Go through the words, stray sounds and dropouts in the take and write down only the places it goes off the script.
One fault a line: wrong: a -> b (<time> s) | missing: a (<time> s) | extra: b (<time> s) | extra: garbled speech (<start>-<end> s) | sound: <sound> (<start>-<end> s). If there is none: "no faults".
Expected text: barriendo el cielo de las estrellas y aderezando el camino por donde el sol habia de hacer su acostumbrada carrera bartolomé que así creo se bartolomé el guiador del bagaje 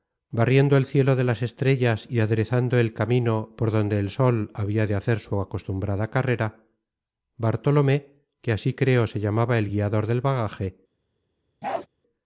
wrong: bartolomé -> llamaba (9.2 s)
sound: bark (11.6-11.9 s)